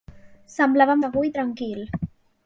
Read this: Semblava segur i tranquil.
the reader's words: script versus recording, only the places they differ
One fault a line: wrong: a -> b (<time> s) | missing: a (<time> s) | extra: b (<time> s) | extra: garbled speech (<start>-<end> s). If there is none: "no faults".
no faults